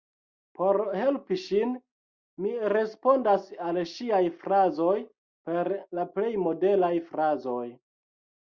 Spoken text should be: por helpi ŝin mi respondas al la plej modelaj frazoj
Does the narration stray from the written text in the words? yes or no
yes